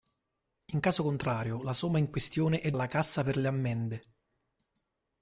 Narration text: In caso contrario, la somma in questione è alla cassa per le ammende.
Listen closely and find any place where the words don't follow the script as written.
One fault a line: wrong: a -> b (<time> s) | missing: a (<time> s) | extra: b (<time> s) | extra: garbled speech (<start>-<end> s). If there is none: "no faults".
no faults